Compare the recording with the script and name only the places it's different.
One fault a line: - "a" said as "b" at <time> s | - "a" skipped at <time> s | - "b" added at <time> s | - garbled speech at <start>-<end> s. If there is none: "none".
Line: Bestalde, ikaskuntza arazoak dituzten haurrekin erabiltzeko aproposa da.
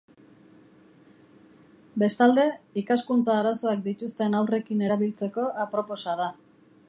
none